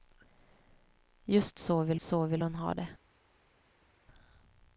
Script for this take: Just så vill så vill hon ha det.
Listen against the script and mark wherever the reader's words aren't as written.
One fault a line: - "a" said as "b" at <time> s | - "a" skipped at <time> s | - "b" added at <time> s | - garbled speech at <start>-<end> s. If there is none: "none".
none